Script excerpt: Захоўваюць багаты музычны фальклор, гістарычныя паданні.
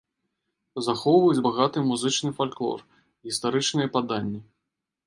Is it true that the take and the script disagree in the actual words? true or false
false